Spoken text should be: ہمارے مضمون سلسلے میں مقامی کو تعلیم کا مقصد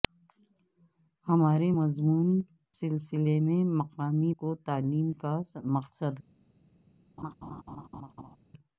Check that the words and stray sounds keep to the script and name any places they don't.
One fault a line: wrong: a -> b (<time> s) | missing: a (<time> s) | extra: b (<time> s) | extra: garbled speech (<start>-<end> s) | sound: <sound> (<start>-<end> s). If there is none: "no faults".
sound: laugh (7.2-8.4 s)